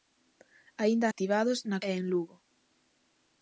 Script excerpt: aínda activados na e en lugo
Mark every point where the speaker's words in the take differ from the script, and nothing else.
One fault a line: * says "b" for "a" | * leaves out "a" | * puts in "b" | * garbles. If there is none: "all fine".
all fine